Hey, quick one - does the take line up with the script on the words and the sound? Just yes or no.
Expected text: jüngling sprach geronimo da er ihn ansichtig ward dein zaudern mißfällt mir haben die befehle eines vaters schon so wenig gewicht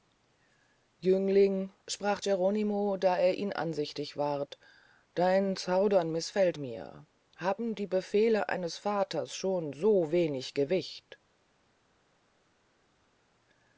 yes